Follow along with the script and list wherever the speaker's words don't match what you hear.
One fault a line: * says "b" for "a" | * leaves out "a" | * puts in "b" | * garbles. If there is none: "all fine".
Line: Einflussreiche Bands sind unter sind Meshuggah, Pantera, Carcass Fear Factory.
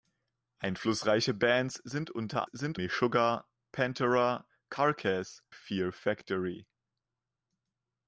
all fine